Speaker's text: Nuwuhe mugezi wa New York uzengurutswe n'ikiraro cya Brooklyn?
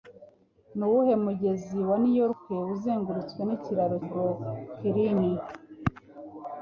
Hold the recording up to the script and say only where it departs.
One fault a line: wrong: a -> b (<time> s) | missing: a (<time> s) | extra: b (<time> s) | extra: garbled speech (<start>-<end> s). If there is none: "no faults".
missing: cya (4.0 s)